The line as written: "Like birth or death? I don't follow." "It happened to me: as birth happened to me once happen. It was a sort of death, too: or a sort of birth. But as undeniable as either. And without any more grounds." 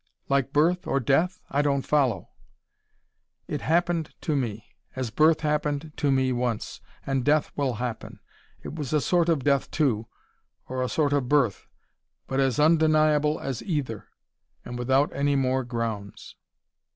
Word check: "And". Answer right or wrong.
right